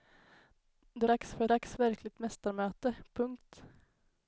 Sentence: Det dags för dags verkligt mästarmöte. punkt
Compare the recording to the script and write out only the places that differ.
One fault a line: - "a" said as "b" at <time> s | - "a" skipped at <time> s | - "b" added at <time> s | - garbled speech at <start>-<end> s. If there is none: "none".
none